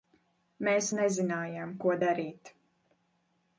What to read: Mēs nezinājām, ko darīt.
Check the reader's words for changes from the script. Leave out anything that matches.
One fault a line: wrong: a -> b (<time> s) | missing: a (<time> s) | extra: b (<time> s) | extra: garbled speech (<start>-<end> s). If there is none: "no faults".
no faults